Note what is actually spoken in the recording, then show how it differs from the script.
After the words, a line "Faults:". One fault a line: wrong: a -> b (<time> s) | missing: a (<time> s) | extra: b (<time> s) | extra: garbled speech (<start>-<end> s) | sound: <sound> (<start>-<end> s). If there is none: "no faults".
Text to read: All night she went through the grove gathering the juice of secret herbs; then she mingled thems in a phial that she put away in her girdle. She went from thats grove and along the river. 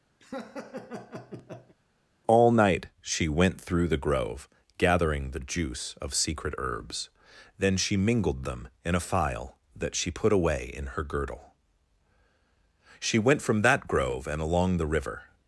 All night she went through the grove gathering the juice of secret herbs; then she mingled them in a phial that she put away in her girdle. She went from that grove and along the river.
Faults:
sound: laugh (0.2-1.8 s)
wrong: thems -> them (8.5 s)
wrong: thats -> that (13.6 s)